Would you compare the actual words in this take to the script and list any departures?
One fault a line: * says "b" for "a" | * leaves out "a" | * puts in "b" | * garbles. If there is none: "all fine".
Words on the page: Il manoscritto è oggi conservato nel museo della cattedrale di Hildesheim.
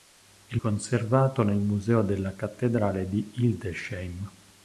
* leaves out "manoscritto è oggi"